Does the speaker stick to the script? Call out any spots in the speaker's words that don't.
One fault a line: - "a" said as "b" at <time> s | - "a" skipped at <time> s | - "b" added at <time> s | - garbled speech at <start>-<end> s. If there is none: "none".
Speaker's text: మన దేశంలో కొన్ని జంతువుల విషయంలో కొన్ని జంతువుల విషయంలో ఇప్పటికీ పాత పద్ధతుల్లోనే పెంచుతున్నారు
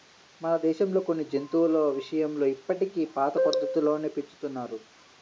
- "కొన్ని జంతువుల విషయంలో" skipped at 2.5 s